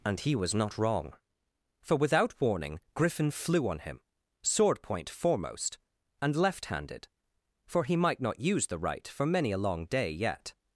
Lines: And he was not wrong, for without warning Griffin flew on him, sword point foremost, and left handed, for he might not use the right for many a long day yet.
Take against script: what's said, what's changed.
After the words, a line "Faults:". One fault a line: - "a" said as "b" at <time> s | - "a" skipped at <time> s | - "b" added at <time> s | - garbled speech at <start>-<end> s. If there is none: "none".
And he was not wrong, for without warning Griffin flew on him, sword point foremost, and left handed, for he might not use the right for many a long day yet.
Faults:
none